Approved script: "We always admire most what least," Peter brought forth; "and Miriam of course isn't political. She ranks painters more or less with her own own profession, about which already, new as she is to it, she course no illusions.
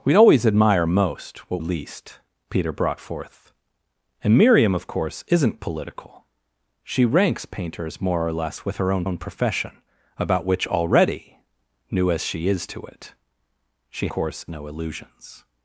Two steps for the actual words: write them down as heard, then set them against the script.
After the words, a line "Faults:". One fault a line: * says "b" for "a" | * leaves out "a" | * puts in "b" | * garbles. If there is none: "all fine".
"We always admire most what least," Peter brought forth; "and Miriam of course isn't political. She ranks painters more or less with her own own profession, about which already, new as she is to it, she course no illusions.
Faults:
all fine